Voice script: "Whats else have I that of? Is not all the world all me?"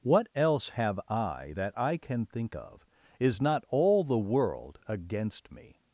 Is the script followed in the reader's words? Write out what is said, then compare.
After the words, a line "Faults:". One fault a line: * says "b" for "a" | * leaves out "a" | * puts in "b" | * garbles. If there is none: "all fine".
"What else have I that I can think of? Is not all the world against me?"
Faults:
* says "What" for "Whats"
* puts in "I can think"
* says "against" for "all"